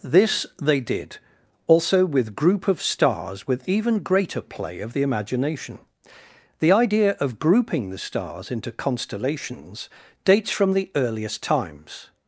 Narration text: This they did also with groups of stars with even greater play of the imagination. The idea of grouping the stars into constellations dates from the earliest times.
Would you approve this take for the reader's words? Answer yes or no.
no